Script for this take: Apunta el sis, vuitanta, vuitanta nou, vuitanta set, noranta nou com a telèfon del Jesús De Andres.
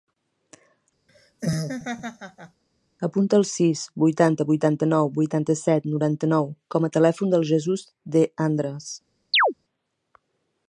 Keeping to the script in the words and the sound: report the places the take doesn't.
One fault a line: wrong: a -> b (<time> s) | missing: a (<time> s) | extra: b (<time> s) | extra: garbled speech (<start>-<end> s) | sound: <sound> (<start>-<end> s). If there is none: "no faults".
sound: laugh (1.1-2.6 s)
sound: chirp (9.3-9.5 s)